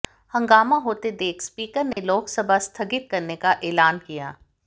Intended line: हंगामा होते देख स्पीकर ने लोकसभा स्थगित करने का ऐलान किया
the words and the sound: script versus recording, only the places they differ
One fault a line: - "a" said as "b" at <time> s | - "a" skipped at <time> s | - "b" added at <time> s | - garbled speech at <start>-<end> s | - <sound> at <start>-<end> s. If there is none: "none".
- dropout at 1.9-2.0 s